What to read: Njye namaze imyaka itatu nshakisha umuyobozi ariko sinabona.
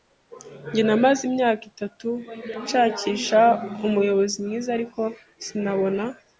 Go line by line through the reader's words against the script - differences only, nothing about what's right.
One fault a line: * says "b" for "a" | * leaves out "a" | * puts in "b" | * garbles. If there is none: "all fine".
* puts in "mwiza"